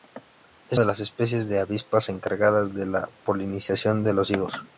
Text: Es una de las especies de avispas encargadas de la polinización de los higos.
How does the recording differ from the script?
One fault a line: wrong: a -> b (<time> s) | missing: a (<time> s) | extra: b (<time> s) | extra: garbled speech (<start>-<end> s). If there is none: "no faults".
missing: una (0.8 s)